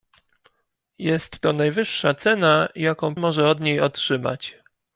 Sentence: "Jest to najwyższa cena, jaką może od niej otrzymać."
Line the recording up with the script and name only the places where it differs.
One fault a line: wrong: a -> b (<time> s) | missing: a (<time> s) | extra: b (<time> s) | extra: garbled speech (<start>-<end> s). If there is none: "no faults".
no faults